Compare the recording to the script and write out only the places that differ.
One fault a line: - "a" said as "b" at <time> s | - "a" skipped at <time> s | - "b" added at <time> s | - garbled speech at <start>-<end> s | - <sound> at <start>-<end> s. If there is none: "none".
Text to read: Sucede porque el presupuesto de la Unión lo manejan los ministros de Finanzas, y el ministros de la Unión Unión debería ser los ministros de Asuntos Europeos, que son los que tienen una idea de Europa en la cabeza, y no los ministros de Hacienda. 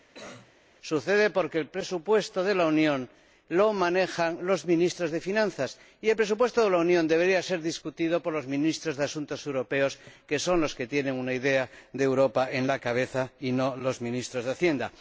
- cough at 0.1-0.5 s
- "ministros" said as "presupuesto" at 6.1 s
- "Unión" skipped at 7.1 s
- "discutido por" added at 7.6 s